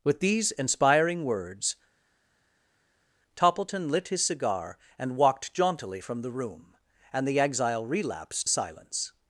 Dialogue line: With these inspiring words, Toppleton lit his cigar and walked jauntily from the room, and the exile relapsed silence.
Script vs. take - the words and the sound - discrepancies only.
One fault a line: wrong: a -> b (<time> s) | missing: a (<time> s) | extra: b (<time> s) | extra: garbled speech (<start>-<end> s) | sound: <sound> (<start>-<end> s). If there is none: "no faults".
no faults